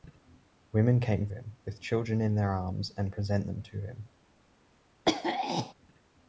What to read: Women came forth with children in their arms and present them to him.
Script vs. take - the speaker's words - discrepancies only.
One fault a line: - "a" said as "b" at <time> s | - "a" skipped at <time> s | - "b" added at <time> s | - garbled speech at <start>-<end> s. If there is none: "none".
- "forth" said as "him" at 1.3 s